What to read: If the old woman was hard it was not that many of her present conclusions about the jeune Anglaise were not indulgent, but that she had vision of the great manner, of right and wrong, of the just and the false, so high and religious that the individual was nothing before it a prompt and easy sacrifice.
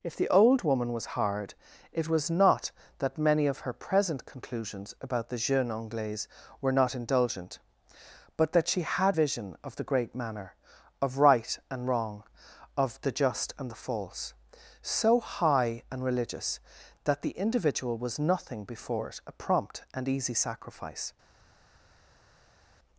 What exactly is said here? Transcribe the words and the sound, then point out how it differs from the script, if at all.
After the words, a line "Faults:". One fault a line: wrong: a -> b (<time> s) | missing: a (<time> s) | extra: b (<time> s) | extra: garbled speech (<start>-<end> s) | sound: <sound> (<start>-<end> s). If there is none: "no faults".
If the old woman was hard it was not that many of her present conclusions about the jeune Anglaise were not indulgent, but that she had vision of the great manner, of right and wrong, of the just and the false, so high and religious that the individual was nothing before it a prompt and easy sacrifice.
Faults:
no faults